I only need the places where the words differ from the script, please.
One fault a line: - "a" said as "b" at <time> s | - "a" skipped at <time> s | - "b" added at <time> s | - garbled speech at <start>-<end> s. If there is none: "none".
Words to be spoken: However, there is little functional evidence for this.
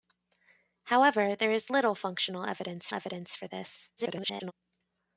- "evidence" added at 2.9 s
- garbled speech at 4.0-4.5 s